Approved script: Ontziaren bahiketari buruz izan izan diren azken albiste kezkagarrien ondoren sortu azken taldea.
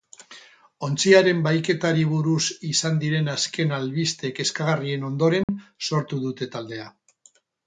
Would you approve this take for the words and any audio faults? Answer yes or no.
no